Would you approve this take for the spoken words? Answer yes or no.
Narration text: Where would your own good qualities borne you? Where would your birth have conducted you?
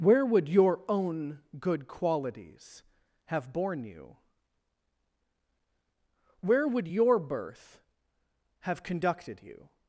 no